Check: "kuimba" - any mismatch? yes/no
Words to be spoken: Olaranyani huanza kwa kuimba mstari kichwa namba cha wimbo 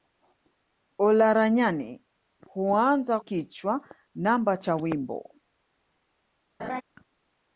yes